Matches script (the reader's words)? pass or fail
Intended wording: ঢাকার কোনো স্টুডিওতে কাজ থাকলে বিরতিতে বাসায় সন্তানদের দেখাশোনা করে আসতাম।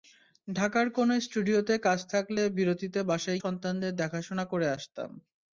pass